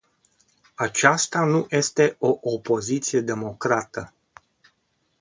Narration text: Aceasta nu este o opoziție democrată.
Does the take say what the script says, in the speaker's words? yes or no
yes